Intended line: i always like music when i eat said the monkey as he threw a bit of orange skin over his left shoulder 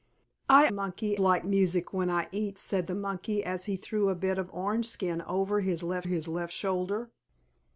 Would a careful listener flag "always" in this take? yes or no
yes